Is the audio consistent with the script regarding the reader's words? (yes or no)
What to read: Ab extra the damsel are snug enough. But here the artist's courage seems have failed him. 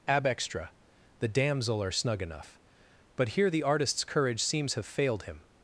yes